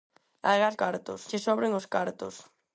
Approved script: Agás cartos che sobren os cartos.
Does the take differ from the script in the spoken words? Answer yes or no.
no